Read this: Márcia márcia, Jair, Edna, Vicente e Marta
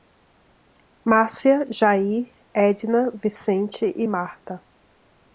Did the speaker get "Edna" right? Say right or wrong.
right